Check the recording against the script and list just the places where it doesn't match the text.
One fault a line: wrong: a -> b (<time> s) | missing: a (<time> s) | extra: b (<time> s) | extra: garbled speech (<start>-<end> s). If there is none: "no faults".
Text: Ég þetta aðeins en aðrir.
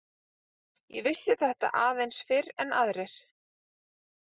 extra: vissi (1.1 s)
extra: fyrr (2.3 s)